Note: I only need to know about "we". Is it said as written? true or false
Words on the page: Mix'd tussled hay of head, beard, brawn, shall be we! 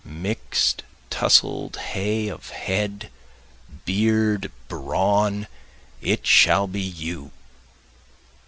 false